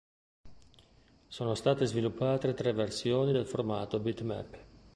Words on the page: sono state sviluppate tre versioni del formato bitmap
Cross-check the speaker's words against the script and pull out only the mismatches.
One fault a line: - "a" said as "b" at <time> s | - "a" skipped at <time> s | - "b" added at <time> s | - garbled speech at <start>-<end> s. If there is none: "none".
none